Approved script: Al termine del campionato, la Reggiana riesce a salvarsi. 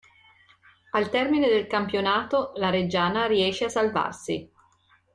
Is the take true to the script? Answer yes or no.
yes